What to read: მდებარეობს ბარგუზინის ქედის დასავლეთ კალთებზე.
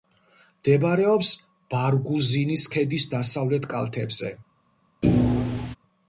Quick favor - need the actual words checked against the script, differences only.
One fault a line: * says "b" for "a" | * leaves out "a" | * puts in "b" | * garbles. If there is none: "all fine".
all fine